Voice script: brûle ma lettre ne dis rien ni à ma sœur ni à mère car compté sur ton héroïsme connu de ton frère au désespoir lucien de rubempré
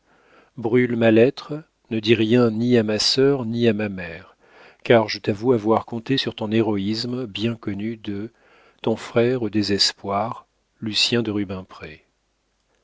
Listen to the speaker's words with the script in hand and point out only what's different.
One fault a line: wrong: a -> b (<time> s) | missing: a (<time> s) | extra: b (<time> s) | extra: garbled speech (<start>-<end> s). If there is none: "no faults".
extra: ma (3.7 s)
extra: je t'avoue avoir (5.1 s)
extra: bien (7.3 s)